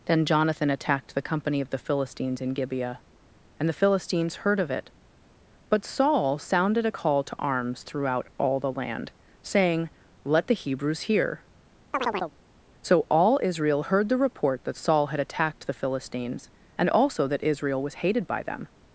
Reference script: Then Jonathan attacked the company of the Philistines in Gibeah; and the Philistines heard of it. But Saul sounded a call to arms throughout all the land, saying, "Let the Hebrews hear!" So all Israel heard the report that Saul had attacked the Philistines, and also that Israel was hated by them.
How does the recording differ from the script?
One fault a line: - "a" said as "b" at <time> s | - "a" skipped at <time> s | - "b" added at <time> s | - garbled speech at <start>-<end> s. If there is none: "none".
none